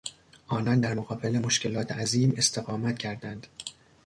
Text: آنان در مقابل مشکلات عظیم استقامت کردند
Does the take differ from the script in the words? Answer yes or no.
no